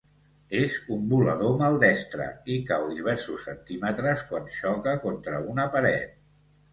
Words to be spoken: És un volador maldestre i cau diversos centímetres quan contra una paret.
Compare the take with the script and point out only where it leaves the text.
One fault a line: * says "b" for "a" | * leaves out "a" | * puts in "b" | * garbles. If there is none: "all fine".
* puts in "xoca"